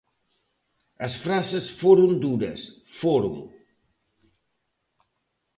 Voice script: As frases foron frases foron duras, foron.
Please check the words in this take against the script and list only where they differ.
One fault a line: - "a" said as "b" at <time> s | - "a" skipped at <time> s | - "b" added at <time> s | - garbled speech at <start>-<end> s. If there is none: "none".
- "frases foron" skipped at 2.2 s